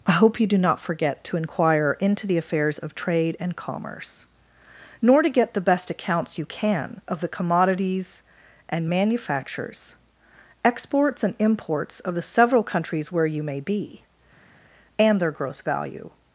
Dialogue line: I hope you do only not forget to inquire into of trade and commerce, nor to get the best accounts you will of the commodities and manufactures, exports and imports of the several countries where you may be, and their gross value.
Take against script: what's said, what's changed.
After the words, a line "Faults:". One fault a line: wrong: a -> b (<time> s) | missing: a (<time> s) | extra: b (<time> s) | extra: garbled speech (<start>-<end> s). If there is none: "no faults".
I hope you do not forget to inquire into the affairs of trade and commerce, nor to get the best accounts you can of the commodities and manufactures, exports and imports of the several countries where you may be, and their gross value.
Faults:
missing: only (0.6 s)
extra: the affairs (2.2 s)
wrong: will -> can (6.4 s)